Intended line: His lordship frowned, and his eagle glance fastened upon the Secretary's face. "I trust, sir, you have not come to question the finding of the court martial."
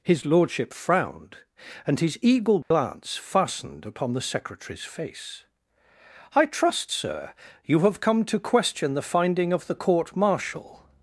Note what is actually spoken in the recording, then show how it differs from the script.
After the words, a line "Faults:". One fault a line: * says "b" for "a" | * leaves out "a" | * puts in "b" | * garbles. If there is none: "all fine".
His lordship frowned, and his eagle glance fastened upon the Secretary's face. "I trust, sir, you have come to question the finding of the court martial."
Faults:
* leaves out "not"